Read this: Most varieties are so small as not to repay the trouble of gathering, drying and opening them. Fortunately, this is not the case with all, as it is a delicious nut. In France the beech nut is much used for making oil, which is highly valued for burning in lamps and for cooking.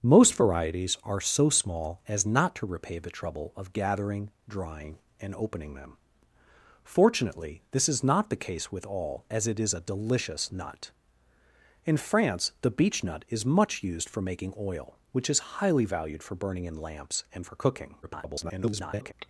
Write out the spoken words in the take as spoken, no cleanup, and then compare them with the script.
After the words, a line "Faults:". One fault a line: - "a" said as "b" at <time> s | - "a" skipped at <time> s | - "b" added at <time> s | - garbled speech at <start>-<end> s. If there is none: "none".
Most varieties are so small as not to repay the trouble of gathering, drying and opening them. Fortunately, this is not the case with all, as it is a delicious nut. In France the beech nut is much used for making oil, which is highly valued for burning in lamps and for cooking. [garbled]
Faults:
- garbled speech at 18.0-19.1 s